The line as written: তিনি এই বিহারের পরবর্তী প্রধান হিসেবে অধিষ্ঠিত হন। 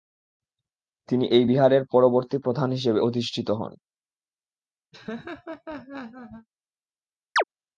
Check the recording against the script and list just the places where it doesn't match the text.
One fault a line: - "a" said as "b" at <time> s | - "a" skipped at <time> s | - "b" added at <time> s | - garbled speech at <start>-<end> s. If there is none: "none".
none